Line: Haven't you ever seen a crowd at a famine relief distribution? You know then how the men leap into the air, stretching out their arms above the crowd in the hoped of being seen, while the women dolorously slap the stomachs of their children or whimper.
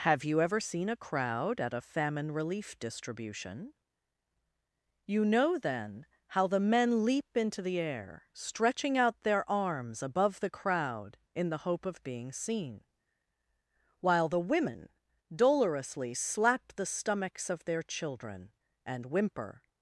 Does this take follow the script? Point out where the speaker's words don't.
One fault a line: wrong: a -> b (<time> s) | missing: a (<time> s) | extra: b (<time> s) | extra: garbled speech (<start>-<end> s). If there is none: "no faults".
wrong: Haven't -> Have (0.1 s)
wrong: hoped -> hope (11.7 s)
wrong: or -> and (18.9 s)